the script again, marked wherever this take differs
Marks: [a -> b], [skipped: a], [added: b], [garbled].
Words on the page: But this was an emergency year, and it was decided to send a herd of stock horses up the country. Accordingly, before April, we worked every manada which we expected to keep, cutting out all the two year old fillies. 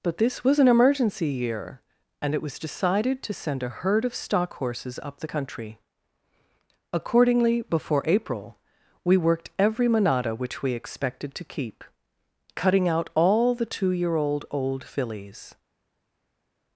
But this was an emergency year, and it was decided to send a herd of stock horses up the country. Accordingly, before April, we worked every manada which we expected to keep, cutting out all the two year old [added: old] fillies.